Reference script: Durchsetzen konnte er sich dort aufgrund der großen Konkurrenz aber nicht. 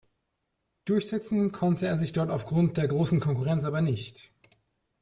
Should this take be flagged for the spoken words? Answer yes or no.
no